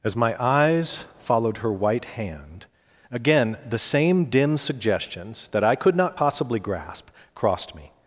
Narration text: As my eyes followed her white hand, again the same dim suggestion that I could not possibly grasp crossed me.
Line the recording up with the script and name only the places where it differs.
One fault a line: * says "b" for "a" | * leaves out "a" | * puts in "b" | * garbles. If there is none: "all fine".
* says "suggestions" for "suggestion"